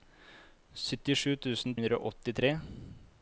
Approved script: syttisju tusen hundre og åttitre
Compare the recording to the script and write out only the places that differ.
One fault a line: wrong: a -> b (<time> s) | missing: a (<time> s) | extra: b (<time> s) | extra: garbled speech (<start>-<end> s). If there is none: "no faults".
no faults